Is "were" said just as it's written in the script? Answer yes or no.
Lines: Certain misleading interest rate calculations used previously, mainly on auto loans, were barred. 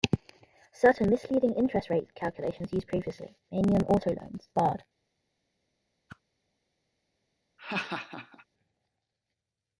no